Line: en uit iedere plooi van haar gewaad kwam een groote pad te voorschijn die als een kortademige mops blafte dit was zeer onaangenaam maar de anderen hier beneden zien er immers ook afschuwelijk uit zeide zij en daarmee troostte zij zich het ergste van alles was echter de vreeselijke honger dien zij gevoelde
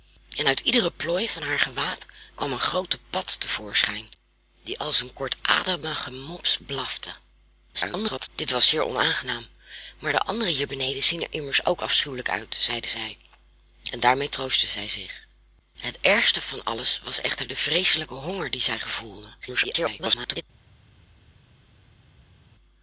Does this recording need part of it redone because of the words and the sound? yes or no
yes